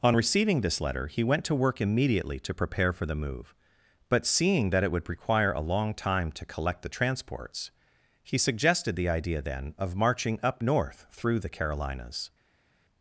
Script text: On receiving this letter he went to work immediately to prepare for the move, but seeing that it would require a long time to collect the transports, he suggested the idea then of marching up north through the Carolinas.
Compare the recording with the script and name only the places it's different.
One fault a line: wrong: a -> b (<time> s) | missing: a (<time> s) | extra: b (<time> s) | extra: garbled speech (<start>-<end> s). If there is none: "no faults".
no faults